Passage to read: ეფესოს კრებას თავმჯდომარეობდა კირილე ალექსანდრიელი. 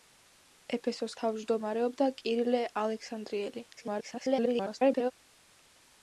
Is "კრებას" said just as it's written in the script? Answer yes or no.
no